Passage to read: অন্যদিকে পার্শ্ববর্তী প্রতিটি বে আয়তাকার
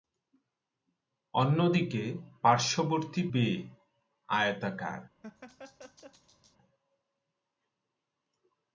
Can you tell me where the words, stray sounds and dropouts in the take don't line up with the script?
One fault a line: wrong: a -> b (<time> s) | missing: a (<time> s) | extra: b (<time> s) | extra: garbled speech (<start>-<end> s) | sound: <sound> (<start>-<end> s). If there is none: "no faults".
missing: প্রতিটি (3.2 s)
sound: laugh (5.2-6.6 s)